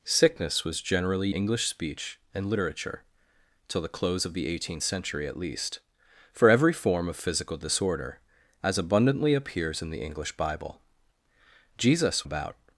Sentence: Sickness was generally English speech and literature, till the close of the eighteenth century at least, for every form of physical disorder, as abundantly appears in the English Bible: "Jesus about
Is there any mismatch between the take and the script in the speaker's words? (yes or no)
no